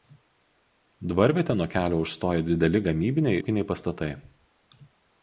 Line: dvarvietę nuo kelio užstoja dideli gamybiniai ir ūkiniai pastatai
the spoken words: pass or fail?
fail